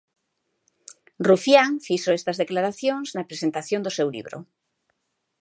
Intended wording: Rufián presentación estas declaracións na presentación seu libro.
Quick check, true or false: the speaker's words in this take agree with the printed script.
false